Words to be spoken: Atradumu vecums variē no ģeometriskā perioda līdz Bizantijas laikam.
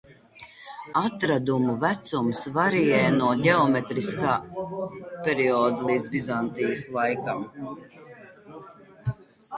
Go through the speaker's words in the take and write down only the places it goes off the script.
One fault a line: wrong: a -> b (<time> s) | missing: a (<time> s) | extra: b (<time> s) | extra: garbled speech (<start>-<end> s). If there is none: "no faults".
no faults